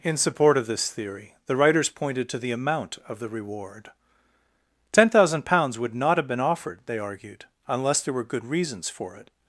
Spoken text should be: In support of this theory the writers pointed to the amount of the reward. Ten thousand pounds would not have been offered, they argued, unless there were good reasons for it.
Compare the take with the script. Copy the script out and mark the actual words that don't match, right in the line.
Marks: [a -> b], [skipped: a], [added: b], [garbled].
In support of this theory the writers pointed to the amount of the reward. Ten thousand pounds would not have been offered, they argued, unless there were good reasons for it.